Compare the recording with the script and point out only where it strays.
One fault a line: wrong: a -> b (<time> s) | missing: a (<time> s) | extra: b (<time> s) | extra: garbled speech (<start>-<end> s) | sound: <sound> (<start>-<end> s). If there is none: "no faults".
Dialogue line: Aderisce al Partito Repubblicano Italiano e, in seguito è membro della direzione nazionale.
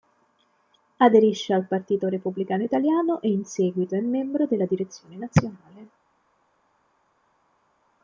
no faults